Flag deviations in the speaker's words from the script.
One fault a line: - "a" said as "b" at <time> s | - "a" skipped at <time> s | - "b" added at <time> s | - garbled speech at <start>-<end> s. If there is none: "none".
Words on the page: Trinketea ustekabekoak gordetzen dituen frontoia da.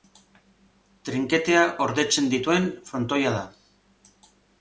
- "ustekabekoak" skipped at 1.6 s